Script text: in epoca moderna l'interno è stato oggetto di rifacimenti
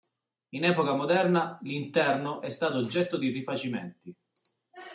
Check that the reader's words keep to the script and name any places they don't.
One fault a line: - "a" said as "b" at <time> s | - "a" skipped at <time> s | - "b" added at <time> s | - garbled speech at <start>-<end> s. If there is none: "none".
none